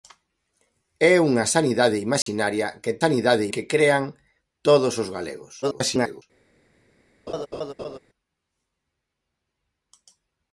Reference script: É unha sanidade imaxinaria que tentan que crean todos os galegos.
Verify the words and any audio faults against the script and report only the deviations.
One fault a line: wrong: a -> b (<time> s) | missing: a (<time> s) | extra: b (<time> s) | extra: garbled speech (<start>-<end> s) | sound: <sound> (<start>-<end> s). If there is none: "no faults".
sound: dropout (2.2-2.3 s)
wrong: tentan -> sanidade (3.0 s)
extra: garbled speech (5.6-6.2 s)
sound: laugh (7.3-8.0 s)